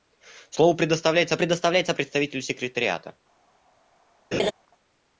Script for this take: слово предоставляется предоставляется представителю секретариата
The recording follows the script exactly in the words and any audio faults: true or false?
false